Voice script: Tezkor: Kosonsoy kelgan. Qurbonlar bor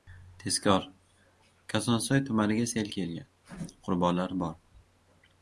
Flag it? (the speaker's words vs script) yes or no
yes